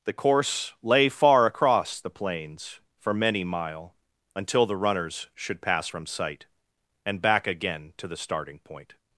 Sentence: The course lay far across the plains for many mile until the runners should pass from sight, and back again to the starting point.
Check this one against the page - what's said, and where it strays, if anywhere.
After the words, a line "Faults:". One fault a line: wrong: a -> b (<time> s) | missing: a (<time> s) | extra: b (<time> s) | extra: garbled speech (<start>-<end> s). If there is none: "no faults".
The course lay far across the plains for many mile until the runners should pass from sight, and back again to the starting point.
Faults:
no faults